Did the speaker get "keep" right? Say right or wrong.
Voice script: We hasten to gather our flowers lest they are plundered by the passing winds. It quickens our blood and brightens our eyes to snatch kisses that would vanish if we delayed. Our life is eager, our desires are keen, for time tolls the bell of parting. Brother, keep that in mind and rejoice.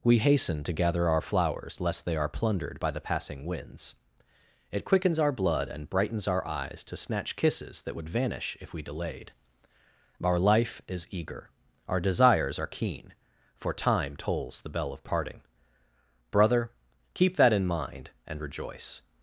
right